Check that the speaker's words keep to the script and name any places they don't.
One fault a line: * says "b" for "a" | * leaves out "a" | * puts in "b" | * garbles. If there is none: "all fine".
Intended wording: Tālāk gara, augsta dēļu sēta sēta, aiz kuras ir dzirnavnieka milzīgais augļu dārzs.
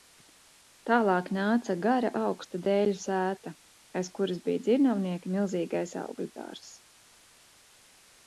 * puts in "nāca"
* leaves out "sēta"
* says "bija" for "ir"